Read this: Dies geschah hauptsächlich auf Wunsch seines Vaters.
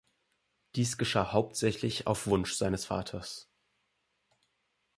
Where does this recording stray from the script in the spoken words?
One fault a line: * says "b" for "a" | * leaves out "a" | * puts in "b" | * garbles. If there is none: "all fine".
all fine